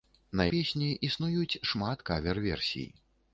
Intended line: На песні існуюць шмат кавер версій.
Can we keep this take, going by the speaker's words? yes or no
yes